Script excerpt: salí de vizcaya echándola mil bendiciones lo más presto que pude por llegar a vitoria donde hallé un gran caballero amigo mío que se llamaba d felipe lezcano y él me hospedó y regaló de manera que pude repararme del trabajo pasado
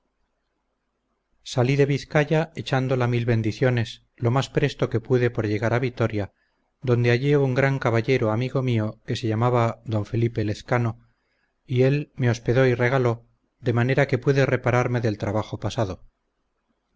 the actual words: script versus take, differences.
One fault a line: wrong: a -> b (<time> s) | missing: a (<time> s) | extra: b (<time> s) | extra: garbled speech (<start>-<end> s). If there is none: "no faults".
no faults